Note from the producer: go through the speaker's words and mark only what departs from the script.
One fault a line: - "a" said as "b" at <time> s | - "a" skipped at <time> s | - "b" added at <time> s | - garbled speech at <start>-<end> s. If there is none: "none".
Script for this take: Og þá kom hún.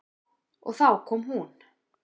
none